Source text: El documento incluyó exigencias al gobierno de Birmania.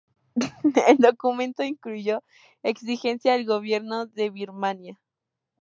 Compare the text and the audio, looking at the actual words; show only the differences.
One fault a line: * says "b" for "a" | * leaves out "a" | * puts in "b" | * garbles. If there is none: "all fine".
all fine